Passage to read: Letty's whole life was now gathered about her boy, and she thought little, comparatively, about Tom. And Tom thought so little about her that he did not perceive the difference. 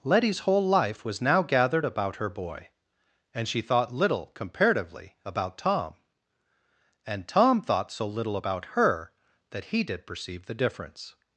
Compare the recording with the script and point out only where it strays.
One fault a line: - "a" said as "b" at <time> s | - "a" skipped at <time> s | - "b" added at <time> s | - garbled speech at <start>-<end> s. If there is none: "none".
- "not" skipped at 10.1 s